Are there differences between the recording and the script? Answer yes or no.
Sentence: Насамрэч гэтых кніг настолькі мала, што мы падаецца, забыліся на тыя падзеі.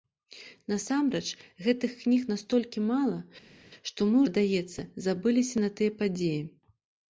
no